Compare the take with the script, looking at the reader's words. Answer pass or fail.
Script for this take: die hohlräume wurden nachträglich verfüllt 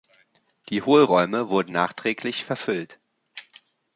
pass